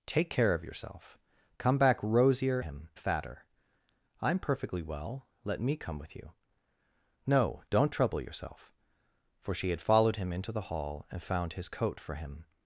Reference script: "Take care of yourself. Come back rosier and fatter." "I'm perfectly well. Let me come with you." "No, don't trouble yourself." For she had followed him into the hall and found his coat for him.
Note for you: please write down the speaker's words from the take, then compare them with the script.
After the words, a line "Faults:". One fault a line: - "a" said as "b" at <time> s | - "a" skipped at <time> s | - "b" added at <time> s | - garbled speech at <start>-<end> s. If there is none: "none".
"Take care of yourself. Come back rosier him fatter." "I'm perfectly well. Let me come with you." "No, don't trouble yourself." For she had followed him into the hall and found his coat for him.
Faults:
- "and" said as "him" at 2.6 s